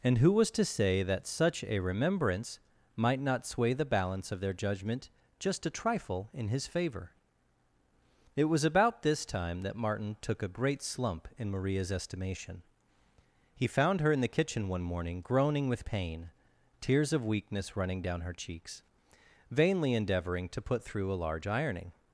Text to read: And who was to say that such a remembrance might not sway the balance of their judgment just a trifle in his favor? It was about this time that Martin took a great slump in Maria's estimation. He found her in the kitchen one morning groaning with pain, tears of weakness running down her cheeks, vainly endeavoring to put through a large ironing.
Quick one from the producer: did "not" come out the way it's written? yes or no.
yes